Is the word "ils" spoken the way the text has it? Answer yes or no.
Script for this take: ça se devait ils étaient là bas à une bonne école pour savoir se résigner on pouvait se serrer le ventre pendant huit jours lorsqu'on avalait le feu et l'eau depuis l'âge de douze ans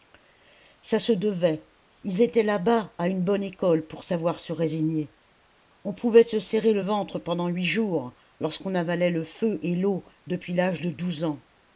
yes